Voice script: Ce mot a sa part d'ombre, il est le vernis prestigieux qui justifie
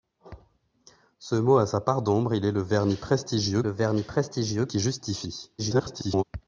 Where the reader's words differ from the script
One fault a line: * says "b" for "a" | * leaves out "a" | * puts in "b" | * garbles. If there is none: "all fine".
* puts in "le vernis prestigieux"
* garbles